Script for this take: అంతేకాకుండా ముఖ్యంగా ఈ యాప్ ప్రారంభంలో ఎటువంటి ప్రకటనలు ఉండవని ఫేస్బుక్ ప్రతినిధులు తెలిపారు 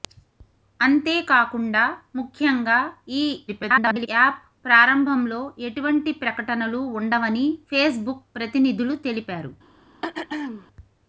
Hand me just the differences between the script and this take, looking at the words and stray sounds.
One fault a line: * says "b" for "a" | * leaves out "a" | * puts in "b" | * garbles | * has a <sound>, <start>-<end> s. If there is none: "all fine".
* garbles
* has a throat clearing, 10.0-10.7 s